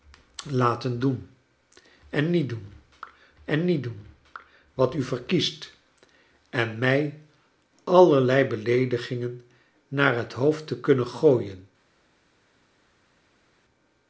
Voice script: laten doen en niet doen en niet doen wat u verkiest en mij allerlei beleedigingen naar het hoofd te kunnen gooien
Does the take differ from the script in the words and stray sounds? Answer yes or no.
no